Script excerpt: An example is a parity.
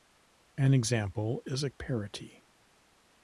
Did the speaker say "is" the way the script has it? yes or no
yes